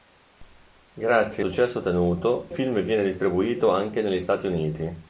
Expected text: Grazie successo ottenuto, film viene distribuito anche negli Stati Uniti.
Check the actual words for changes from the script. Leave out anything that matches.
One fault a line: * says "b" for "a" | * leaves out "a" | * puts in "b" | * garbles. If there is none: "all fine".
all fine